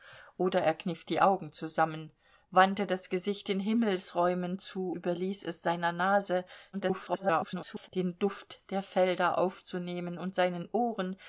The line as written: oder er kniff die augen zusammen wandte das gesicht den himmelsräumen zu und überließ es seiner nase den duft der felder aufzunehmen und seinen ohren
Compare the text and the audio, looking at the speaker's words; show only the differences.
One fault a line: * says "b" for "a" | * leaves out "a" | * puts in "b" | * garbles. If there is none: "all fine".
* leaves out "und"
* garbles